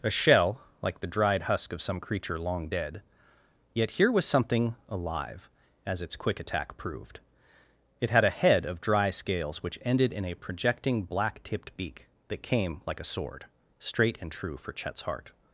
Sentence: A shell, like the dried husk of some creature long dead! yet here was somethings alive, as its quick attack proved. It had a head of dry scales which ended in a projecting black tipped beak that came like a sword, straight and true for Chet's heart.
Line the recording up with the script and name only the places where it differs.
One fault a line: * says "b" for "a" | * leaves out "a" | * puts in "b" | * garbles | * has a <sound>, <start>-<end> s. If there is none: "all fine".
* says "something" for "somethings"